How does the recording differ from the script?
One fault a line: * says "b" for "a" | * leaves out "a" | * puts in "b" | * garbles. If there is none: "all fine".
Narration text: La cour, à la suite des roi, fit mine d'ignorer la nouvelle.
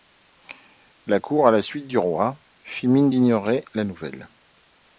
* says "du" for "des"